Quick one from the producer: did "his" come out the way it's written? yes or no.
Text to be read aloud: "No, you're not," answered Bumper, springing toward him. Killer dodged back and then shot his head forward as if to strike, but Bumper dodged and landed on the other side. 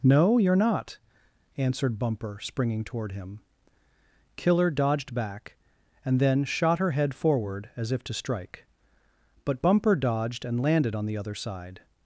no